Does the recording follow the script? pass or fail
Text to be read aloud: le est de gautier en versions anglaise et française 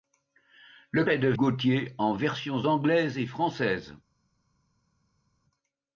pass